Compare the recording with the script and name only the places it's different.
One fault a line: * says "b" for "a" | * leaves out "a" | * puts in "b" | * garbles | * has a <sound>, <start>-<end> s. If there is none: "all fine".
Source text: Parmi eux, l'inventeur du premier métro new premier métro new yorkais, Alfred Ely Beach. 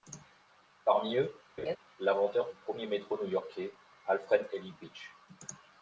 * has a laugh, 1.6-1.8 s
* leaves out "premier métro new"